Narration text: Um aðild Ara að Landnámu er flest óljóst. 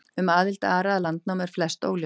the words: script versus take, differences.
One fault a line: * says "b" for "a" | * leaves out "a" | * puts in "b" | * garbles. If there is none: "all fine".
all fine